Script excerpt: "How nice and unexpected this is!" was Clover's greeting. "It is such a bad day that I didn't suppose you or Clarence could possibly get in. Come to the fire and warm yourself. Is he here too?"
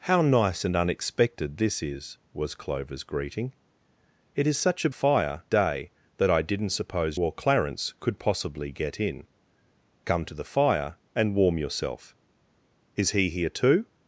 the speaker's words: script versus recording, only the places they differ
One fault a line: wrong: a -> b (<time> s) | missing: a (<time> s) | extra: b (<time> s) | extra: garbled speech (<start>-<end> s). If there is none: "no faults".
wrong: bad -> fire (4.9 s)
missing: you (7.2 s)